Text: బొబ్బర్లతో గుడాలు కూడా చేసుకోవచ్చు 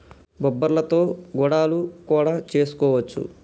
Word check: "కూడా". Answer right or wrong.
right